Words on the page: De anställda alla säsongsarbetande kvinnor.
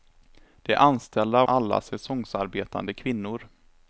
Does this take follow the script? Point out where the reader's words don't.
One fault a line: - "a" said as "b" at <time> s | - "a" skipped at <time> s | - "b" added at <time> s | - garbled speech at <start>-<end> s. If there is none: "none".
none